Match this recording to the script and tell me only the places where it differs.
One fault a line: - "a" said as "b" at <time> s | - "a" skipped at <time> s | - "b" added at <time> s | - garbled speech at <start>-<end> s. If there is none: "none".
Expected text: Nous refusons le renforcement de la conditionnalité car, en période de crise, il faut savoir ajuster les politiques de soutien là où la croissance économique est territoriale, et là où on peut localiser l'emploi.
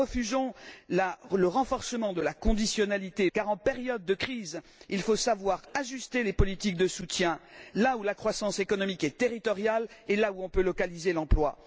none